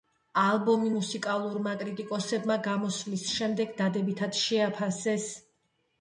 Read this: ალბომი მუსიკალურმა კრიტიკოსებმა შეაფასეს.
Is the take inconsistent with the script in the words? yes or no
yes